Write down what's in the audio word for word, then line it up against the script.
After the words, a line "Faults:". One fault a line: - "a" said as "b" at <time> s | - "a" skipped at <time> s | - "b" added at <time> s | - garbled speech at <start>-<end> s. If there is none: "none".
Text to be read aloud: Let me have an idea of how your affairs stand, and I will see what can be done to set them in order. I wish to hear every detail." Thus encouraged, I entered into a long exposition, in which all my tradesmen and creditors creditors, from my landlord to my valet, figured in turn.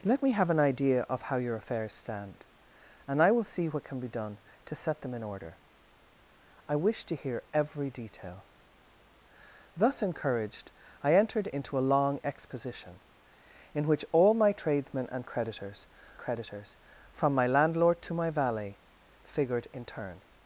Let me have an idea of how your affairs stand, and I will see what can be done to set them in order. I wish to hear every detail." Thus encouraged, I entered into a long exposition, in which all my tradesmen and creditors creditors, from my landlord to my valet, figured in turn.
Faults:
none